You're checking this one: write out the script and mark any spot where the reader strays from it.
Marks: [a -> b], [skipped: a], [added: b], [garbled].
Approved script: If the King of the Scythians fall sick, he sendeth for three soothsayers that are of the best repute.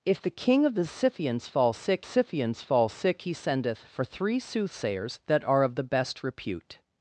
If the King of the Scythians fall sick, [added: Scythians fall sick] he sendeth for three soothsayers that are of the best repute.